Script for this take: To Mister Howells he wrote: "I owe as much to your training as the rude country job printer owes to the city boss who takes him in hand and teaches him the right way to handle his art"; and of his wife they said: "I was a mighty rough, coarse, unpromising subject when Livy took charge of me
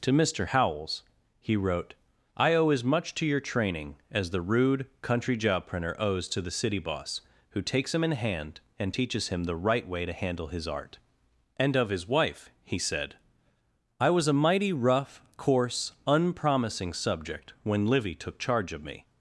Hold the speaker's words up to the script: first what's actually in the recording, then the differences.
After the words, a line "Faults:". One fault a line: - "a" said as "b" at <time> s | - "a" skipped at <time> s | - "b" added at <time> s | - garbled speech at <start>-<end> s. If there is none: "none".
To Mister Howells he wrote: "I owe as much to your training as the rude country job printer owes to the city boss who takes him in hand and teaches him the right way to handle his art"; and of his wife he said: "I was a mighty rough, coarse, unpromising subject when Livy took charge of me
Faults:
- "they" said as "he" at 12.6 s